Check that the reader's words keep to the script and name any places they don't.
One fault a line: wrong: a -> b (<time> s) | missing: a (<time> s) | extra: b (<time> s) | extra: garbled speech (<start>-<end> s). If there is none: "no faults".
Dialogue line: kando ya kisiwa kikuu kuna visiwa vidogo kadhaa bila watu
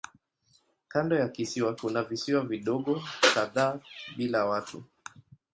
missing: kikuu (1.8 s)